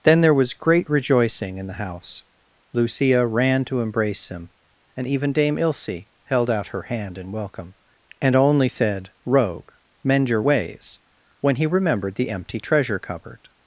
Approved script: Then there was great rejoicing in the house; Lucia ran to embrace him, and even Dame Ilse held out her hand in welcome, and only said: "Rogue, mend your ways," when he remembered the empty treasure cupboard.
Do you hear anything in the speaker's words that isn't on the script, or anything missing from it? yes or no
no